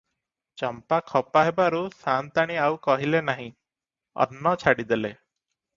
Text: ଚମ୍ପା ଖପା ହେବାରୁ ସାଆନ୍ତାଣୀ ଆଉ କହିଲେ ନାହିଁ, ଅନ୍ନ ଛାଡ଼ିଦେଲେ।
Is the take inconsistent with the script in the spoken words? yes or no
no